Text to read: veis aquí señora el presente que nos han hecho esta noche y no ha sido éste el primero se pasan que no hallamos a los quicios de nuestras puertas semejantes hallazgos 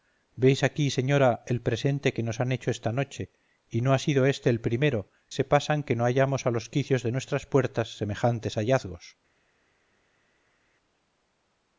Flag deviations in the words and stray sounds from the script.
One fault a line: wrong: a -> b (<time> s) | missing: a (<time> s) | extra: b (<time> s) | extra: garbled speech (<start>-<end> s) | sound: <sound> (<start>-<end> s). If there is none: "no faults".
no faults